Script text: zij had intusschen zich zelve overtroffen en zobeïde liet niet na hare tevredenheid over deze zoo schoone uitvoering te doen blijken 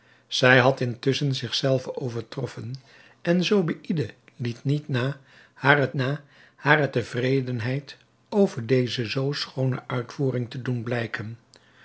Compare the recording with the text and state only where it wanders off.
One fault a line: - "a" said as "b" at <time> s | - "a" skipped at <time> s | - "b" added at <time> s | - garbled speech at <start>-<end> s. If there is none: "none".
- "na hare" added at 5.9 s